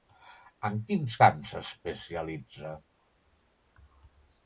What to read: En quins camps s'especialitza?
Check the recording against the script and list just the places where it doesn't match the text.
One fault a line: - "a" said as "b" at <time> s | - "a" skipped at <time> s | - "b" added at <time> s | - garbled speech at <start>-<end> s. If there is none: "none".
none